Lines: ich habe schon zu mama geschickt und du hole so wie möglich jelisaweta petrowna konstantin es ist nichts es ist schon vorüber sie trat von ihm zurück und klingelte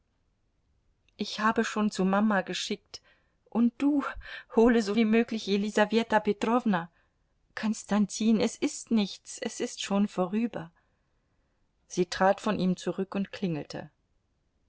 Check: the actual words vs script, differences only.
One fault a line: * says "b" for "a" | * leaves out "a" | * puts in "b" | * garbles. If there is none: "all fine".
all fine